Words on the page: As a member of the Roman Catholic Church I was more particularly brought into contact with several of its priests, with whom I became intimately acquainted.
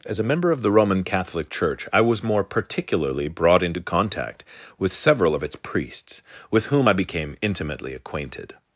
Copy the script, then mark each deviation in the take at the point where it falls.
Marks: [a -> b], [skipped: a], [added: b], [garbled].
As a member of the Roman Catholic Church I was more particularly brought into contact with several of its priests, with whom I became intimately acquainted.